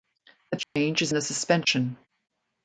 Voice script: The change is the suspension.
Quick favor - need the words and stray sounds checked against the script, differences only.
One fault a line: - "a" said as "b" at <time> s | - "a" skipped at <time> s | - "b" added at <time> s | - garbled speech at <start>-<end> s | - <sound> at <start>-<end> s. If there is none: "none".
- dropout at 0.6-0.8 s